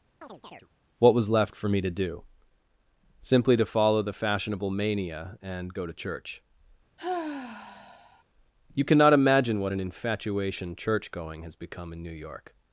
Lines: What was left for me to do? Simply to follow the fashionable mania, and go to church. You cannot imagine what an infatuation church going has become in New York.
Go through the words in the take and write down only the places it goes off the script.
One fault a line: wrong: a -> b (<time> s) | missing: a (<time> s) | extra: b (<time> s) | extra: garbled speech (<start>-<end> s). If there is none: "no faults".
no faults